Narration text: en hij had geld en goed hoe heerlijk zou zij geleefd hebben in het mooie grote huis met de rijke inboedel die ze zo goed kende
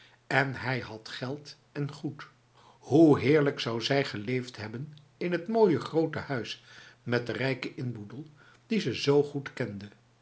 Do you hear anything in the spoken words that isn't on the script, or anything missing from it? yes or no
no